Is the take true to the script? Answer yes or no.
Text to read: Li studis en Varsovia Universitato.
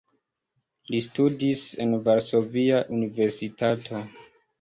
yes